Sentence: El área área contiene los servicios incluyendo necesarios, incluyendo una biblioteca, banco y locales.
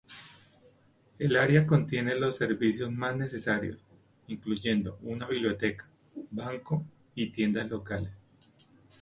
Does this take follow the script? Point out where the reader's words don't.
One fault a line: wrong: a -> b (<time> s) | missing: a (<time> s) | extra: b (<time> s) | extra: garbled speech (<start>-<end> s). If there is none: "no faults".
missing: área (1.7 s)
wrong: incluyendo -> más (2.9 s)
extra: tiendas (7.3 s)